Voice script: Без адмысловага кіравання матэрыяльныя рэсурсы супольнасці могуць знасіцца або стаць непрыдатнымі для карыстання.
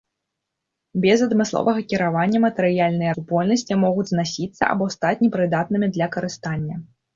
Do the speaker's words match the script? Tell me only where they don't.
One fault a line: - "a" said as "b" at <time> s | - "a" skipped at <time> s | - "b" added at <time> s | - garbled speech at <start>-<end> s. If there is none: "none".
- "рэсурсы" skipped at 3.1 s